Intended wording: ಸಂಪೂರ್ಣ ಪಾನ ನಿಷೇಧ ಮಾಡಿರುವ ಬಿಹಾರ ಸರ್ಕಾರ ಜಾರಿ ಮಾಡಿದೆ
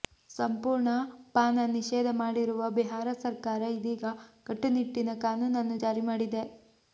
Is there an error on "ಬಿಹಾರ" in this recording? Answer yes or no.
no